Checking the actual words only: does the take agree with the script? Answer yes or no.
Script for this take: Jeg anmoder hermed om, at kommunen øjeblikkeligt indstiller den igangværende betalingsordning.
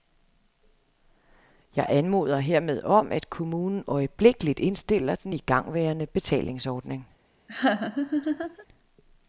yes